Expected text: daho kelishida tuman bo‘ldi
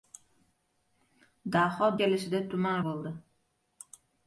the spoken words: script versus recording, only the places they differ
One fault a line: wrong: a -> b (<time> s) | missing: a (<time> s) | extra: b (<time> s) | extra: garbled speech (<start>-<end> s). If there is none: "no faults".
no faults